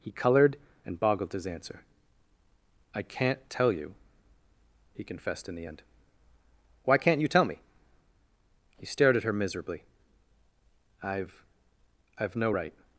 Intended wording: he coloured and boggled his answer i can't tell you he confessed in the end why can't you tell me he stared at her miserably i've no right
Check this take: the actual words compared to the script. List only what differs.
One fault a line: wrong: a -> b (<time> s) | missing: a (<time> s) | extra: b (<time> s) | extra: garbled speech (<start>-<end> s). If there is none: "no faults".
extra: i've (12.2 s)